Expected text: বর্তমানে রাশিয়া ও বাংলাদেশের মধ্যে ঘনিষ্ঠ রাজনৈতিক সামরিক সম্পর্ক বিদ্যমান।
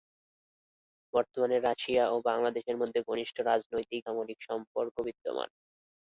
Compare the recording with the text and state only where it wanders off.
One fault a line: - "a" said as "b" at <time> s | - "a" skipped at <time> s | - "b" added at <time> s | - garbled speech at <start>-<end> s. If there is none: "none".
none